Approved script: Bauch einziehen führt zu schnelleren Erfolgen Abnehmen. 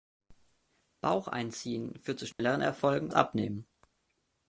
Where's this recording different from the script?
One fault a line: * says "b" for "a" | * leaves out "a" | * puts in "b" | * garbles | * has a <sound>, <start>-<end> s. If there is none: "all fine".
* has a dropout, 2.3-2.4 s